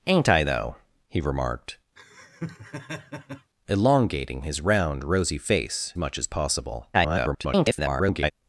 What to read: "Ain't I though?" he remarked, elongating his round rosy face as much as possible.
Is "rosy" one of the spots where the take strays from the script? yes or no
no